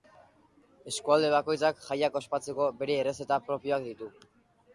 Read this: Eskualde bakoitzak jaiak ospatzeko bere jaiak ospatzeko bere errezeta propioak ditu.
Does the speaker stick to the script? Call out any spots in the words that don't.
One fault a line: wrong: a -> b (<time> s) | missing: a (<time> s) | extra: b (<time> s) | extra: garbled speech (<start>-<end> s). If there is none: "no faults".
missing: jaiak ospatzeko bere (3.0 s)